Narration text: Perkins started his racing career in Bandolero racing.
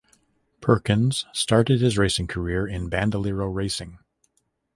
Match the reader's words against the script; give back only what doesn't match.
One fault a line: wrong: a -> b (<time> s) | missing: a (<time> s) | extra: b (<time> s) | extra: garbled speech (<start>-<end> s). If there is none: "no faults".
no faults